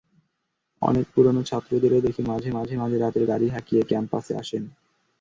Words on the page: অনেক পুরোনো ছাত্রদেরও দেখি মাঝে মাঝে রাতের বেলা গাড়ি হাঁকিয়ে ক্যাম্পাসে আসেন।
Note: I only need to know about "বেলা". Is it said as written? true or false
false